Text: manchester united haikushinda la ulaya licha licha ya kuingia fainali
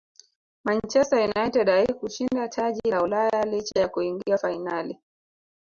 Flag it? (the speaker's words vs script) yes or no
yes